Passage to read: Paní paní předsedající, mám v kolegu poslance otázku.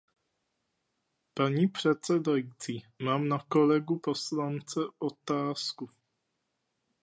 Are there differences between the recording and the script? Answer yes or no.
yes